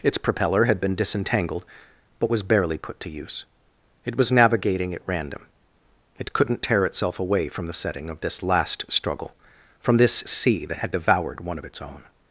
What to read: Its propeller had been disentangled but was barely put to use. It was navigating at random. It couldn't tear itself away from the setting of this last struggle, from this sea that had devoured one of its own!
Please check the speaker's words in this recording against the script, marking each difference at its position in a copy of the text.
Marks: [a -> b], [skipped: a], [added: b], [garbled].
Its propeller had been disentangled but was barely put to use. It was navigating at random. It couldn't tear itself away from the setting of this last struggle, from this sea that had devoured one of its own!